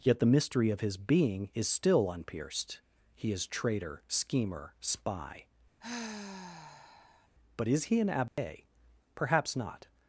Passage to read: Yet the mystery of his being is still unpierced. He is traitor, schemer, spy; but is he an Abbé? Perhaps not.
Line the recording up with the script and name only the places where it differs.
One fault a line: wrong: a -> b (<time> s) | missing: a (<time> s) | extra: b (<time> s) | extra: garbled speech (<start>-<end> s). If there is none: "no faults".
no faults